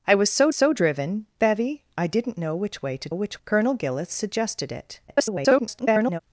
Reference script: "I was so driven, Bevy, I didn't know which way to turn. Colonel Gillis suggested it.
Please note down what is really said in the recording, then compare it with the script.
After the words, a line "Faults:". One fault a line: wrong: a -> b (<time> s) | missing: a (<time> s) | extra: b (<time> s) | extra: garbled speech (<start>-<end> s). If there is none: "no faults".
"I was so so driven, Bevy, I didn't know which way to which. Colonel Gillis suggested it. [garbled]
Faults:
extra: so (0.5 s)
wrong: turn -> which (3.1 s)
extra: garbled speech (5.1-6.2 s)